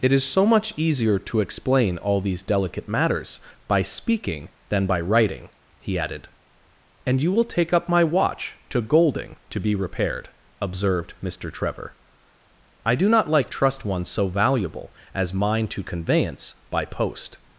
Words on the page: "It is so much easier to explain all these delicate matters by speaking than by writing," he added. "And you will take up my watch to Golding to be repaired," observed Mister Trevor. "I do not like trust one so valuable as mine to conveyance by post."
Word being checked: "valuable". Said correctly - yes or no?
yes